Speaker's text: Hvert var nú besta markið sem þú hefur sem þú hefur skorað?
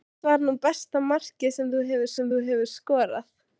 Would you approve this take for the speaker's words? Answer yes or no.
yes